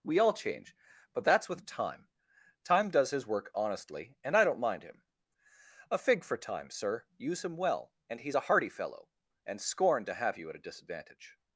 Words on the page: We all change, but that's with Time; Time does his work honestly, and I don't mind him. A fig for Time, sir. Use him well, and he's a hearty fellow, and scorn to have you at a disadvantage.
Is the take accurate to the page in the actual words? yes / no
yes